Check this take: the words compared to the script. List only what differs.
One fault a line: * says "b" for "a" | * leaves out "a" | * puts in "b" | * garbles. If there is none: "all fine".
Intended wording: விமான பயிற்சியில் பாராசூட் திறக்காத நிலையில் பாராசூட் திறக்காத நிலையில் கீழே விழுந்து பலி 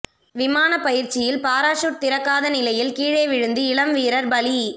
* says "கீழே விழுந்து இளம் வீரர்" for "பாராசூட் திறக்காத நிலையில் கீழே விழுந்து"